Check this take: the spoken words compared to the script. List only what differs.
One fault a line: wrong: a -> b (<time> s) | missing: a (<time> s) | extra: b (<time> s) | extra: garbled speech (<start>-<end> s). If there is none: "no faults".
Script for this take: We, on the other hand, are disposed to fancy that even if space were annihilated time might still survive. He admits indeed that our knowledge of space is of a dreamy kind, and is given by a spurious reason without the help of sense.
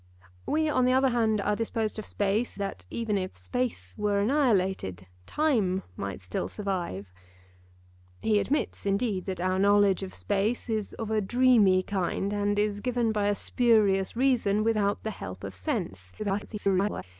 wrong: fancy -> space (2.0 s)
extra: garbled speech (16.2-17.0 s)